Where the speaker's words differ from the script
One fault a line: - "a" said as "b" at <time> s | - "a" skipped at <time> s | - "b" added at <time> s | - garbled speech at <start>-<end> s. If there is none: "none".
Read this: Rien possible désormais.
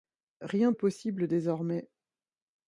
none